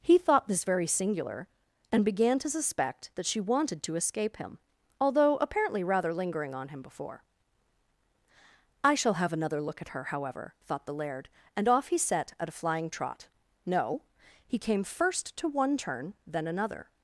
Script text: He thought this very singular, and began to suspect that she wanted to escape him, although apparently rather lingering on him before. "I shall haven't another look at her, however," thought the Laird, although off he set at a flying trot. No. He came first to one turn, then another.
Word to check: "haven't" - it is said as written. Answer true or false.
false